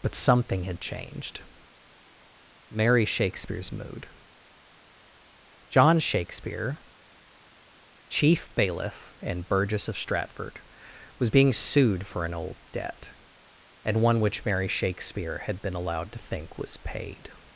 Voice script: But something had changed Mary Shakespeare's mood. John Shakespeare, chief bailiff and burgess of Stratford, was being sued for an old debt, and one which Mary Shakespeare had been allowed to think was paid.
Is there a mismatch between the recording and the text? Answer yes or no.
no